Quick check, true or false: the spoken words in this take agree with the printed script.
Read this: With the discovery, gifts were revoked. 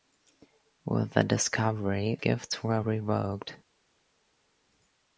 true